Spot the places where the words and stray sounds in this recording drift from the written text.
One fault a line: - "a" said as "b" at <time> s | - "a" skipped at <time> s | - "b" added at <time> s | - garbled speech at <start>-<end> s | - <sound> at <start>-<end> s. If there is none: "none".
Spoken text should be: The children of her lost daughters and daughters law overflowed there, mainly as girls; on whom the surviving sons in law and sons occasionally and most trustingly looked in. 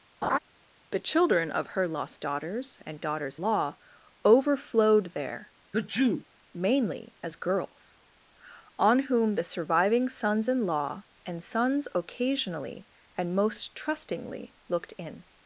- laugh at 0.2-0.4 s
- sneeze at 5.7-6.2 s